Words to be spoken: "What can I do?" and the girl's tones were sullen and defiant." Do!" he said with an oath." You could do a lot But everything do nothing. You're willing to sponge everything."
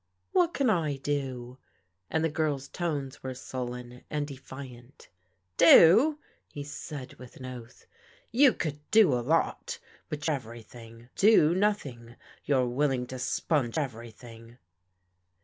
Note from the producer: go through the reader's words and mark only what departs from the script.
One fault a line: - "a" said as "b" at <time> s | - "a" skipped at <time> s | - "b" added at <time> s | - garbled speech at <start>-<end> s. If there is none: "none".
none